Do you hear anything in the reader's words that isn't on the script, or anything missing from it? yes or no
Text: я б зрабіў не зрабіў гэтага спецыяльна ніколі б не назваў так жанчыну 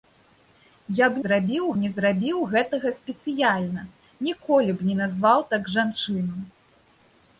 no